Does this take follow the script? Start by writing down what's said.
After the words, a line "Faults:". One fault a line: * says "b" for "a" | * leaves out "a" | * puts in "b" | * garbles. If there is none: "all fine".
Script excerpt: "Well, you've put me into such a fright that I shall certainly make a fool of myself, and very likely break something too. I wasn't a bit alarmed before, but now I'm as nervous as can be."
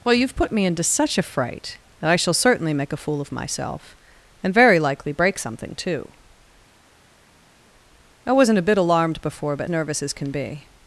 "Well, you've put me into such a fright that I shall certainly make a fool of myself, and very likely break something too. I wasn't a bit alarmed before, but nervous as can be."
Faults:
* leaves out "now I'm as"